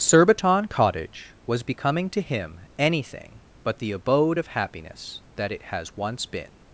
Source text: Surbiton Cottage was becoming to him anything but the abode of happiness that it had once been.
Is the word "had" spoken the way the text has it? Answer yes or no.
no